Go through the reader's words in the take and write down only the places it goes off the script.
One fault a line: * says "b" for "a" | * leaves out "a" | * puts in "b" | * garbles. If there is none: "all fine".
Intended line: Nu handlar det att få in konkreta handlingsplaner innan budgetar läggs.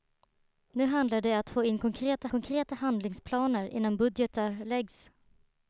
* puts in "konkreta"